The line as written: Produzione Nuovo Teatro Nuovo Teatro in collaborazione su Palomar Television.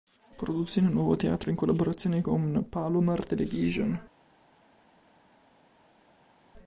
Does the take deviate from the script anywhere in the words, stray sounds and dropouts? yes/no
yes